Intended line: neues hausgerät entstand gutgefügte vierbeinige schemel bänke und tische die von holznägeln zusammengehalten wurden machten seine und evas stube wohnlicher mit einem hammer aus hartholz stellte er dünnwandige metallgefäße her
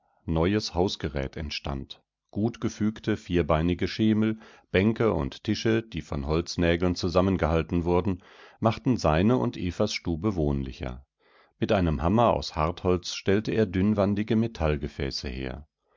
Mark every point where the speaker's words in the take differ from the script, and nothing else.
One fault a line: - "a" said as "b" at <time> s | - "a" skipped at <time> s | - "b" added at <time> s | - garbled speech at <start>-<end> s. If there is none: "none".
none